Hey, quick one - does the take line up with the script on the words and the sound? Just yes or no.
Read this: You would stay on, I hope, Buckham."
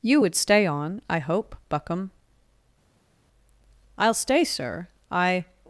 no